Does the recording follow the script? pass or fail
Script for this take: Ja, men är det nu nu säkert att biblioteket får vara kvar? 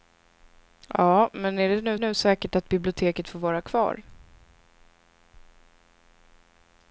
pass